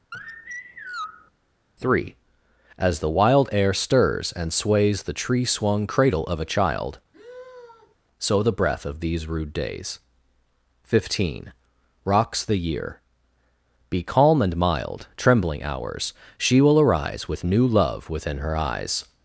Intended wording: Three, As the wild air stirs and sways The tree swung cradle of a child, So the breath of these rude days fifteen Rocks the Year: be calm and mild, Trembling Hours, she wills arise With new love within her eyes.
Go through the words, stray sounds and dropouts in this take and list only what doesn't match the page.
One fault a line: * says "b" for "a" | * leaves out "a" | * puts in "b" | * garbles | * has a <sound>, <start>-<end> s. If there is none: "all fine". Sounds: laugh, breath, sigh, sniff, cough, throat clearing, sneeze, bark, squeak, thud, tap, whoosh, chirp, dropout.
* has a sigh, 0.1-1.3 s
* has a sigh, 7.1-8.0 s
* says "will" for "wills"